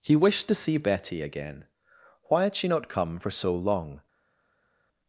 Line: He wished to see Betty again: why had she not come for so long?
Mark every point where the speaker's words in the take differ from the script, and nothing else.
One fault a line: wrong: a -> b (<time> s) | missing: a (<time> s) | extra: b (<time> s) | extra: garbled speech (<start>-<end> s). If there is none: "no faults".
no faults